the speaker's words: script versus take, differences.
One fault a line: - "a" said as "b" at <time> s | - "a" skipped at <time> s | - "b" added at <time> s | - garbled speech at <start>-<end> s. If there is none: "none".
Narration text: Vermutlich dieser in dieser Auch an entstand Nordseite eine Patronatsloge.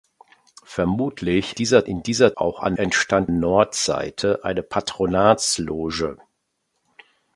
none